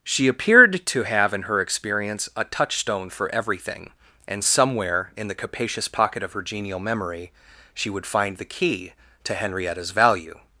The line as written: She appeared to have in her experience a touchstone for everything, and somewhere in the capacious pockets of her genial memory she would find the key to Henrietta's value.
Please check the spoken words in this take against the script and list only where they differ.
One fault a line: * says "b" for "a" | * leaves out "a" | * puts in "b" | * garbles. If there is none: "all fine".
* says "pocket" for "pockets"